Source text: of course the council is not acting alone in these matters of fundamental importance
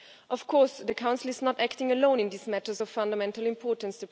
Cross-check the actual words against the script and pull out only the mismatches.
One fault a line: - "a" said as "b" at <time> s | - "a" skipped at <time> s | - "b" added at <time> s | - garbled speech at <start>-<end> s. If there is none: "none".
none